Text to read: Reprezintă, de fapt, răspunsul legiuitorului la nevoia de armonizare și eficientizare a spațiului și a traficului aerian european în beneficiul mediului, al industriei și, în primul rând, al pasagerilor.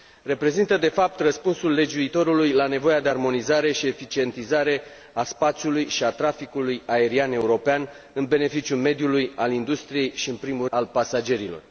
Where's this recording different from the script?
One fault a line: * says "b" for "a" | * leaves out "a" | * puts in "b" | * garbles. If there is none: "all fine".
* leaves out "rând"